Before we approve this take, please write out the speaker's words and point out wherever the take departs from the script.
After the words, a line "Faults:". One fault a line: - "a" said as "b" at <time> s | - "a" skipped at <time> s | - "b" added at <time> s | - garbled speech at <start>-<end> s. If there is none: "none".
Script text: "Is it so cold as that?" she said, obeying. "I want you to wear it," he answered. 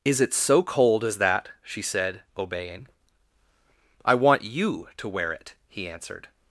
"Is it so cold as that?" she said, obeying. "I want you to wear it," he answered.
Faults:
none